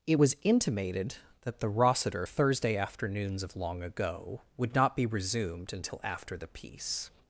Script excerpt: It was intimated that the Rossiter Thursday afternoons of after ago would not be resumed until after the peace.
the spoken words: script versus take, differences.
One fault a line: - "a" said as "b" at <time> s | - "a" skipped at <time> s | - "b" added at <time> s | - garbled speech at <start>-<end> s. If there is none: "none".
- "after" said as "long" at 3.6 s